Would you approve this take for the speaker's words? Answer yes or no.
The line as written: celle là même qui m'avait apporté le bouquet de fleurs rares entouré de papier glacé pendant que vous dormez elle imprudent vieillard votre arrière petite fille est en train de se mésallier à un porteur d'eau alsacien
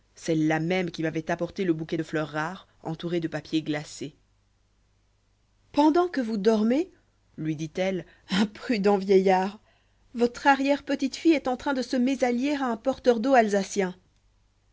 no